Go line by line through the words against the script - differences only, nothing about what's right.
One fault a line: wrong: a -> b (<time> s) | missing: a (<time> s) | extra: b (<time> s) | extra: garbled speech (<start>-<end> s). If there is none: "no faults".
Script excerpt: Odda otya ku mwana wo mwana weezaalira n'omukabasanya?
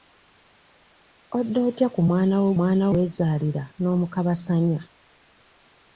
no faults